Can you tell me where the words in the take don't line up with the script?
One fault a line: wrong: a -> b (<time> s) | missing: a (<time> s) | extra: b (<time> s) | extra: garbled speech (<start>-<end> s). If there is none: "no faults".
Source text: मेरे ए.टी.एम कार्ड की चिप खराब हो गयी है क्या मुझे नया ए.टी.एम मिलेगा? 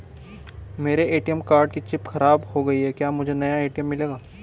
no faults